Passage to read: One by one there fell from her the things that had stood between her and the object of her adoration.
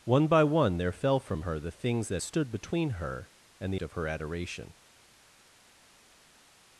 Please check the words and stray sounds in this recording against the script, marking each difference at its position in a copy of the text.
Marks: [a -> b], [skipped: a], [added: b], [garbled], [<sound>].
One by one there fell from her the things that [skipped: had] stood between her and the [skipped: object] of her adoration.